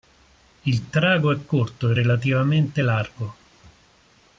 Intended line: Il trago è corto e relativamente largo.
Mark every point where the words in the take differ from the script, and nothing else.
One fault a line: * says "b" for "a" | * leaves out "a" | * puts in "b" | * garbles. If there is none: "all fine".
all fine